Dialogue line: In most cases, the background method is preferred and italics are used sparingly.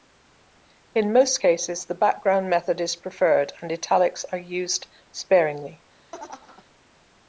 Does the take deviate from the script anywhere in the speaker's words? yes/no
no